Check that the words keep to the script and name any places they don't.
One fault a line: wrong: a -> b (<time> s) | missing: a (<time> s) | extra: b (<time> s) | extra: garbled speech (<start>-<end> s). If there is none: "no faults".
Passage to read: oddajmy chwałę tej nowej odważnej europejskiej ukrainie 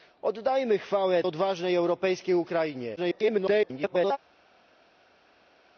missing: tej nowej (1.2 s)
extra: garbled speech (3.0-4.2 s)